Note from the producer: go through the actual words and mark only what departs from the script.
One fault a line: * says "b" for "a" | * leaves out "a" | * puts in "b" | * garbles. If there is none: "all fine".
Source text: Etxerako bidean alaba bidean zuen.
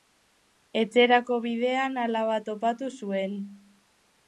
* says "topatu" for "bidean"